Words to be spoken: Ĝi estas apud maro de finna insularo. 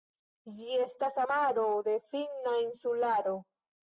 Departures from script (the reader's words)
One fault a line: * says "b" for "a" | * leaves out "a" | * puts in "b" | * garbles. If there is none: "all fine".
* leaves out "apud"